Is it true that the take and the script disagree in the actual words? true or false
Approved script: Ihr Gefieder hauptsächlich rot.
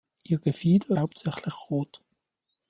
false